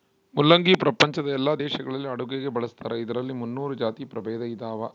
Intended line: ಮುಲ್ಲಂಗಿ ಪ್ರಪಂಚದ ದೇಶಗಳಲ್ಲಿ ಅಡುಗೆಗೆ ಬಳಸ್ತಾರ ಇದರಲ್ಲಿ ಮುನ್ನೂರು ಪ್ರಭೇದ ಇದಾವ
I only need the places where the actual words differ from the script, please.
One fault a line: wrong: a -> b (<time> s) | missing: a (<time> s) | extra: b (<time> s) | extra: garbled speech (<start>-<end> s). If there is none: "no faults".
extra: ಎಲ್ಲಾ (1.3 s)
extra: ಜಾತಿ (3.7 s)